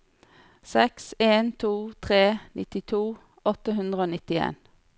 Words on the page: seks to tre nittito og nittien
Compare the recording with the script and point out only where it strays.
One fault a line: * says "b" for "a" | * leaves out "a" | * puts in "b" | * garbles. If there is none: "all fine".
* puts in "en"
* puts in "åtte hundre"